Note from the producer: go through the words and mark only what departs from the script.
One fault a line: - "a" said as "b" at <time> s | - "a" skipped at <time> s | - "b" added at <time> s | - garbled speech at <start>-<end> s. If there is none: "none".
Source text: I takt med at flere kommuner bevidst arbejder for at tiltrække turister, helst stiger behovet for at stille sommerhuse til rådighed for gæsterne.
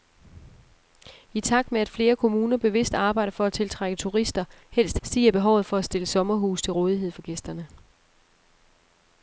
none